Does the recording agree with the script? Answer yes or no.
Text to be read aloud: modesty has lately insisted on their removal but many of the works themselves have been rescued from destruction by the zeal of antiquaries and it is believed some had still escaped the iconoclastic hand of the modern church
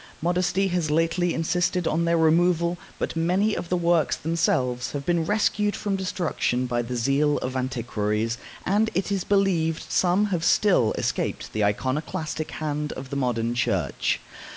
no